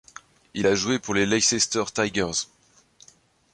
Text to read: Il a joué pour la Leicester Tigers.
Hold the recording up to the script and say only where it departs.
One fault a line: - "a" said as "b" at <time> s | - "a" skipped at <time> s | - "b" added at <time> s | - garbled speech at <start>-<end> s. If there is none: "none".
- "la" said as "les" at 1.1 s